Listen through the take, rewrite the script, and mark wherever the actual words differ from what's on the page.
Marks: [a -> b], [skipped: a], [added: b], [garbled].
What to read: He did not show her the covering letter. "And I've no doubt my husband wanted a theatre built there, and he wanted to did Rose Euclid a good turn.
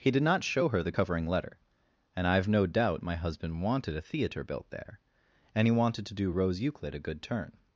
He did not show her the covering letter. "And I've no doubt my husband wanted a theatre built there, and he wanted to [did -> do] Rose Euclid a good turn.